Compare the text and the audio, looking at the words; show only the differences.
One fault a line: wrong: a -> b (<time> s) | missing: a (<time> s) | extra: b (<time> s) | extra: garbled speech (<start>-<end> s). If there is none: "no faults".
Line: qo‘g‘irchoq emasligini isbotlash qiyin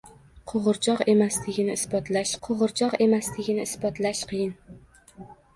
extra: qo‘g‘irchoq emasligini isbotlash (2.5 s)